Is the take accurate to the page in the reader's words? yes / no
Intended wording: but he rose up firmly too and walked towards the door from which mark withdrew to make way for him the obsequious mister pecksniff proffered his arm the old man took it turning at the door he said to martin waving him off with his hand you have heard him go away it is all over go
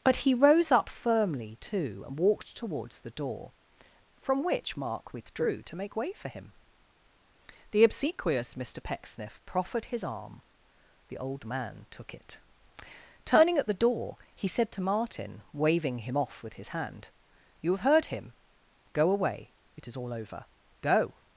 yes